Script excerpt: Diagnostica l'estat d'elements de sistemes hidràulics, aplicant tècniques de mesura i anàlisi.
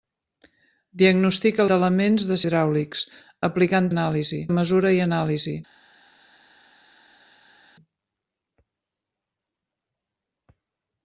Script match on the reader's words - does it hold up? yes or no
no